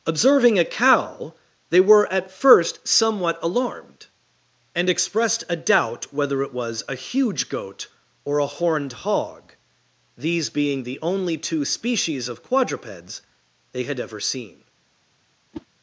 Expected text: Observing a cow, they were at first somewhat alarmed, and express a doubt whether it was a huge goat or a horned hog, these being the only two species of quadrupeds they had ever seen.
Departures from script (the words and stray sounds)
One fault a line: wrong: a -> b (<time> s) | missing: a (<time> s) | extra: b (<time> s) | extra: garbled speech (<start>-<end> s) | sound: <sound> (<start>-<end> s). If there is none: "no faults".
wrong: express -> expressed (4.9 s)
sound: whoosh (15.5-15.7 s)